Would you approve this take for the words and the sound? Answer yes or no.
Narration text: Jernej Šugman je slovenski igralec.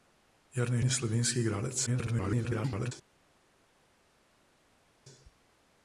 no